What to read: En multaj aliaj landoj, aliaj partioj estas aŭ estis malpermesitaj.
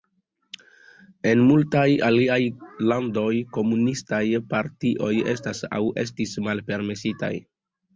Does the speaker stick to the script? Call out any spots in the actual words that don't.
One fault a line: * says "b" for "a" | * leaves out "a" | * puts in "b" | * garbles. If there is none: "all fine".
* says "komunistaj" for "aliaj"